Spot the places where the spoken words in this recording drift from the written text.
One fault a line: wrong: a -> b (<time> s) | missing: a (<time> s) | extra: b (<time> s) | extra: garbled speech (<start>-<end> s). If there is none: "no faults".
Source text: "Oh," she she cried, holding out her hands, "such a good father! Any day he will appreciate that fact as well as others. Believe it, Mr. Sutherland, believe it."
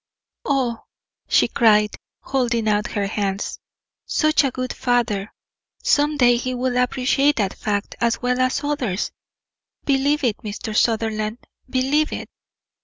missing: she (1.5 s)
wrong: Any -> Some (5.8 s)